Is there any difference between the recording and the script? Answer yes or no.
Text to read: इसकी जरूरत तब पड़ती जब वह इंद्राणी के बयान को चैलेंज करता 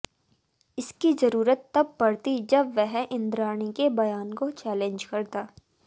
no